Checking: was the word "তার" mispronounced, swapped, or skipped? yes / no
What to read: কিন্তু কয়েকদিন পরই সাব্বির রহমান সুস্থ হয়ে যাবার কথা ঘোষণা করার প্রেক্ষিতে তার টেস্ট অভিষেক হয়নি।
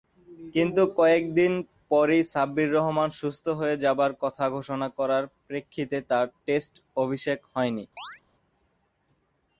no